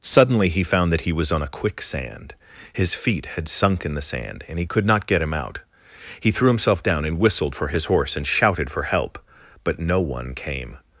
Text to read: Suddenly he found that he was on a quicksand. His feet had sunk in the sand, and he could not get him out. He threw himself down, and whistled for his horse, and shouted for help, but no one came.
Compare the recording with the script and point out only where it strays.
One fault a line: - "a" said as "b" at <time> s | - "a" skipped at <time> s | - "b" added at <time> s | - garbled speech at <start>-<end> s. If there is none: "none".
none